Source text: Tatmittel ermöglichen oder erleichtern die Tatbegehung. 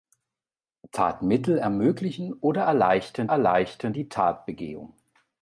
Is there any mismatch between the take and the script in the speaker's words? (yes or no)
yes